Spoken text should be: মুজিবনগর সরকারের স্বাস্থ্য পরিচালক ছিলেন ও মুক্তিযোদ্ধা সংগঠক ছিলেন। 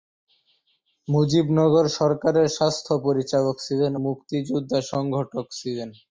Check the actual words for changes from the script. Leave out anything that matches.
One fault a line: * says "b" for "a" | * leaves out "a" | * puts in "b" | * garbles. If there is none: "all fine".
* leaves out "ও"